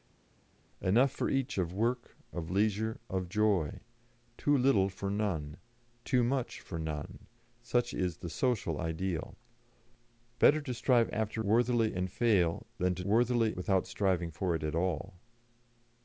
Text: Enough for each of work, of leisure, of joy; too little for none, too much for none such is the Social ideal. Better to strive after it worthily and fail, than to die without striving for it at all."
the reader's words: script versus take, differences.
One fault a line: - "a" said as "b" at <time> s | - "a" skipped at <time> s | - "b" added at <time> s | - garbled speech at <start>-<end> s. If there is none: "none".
- "it" skipped at 11.4 s
- "die" said as "worthily" at 13.0 s